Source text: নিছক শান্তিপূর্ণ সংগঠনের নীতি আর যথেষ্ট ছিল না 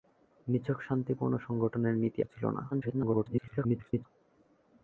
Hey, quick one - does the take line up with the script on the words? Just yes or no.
no